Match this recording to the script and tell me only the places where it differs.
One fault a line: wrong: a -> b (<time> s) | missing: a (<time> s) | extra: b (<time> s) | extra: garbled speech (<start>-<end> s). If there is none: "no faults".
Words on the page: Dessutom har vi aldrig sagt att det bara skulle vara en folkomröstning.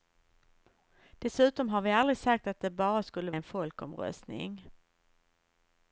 missing: vara (3.3 s)